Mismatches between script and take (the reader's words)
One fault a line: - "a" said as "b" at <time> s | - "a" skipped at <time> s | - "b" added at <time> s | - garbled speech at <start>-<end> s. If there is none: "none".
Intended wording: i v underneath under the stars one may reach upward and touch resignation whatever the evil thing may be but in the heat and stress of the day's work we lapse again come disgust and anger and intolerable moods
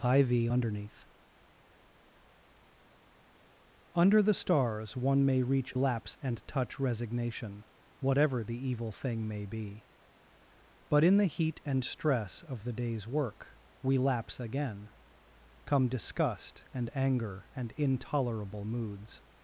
- "upward" said as "lapse" at 5.7 s